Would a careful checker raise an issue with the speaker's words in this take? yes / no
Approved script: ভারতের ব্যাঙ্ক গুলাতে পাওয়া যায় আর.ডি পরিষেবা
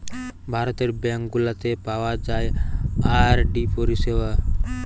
no